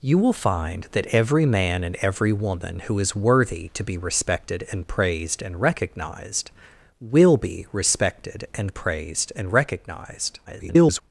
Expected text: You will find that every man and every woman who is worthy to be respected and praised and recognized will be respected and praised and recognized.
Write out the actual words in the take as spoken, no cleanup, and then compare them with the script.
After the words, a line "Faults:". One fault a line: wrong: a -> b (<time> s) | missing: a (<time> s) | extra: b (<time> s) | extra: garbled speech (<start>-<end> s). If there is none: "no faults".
You will find that every man and every woman who is worthy to be respected and praised and recognized will be respected and praised and recognized. [garbled]
Faults:
extra: garbled speech (10.5-11.0 s)